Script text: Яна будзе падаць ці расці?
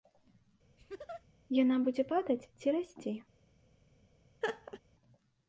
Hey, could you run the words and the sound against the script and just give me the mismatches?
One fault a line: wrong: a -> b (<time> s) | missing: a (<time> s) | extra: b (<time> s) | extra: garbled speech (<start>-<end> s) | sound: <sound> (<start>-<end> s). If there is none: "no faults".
sound: laugh (0.8-1.3 s)
sound: laugh (4.4-4.8 s)